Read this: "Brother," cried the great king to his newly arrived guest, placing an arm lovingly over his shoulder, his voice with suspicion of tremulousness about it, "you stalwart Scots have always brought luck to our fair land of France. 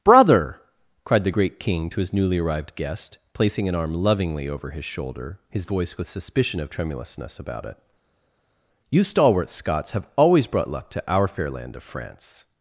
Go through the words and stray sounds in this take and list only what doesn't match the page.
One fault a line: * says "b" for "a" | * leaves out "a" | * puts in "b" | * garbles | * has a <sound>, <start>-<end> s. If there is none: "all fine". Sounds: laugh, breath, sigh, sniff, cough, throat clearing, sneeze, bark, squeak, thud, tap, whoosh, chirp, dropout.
all fine